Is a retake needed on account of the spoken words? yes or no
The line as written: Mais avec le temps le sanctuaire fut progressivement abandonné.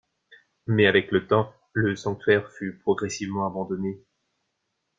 no